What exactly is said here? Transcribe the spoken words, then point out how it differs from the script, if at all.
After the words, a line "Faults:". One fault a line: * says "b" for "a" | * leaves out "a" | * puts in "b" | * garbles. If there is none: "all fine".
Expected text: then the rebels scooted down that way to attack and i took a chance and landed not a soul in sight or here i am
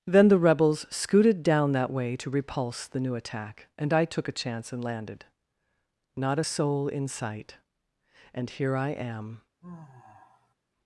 then the rebels scooted down that way to repulse the new attack and i took a chance and landed not a soul in sight and here i am
Faults:
* puts in "repulse the new"
* says "and" for "or"